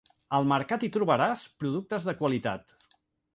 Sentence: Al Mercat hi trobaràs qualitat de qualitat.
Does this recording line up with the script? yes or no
no